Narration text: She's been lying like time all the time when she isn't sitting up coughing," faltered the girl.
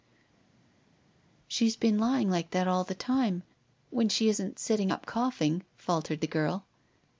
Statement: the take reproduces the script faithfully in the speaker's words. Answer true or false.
false